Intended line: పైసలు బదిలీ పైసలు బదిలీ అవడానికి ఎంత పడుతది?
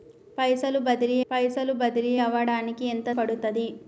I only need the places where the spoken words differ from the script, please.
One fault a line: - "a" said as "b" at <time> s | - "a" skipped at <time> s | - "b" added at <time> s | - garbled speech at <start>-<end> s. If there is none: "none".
none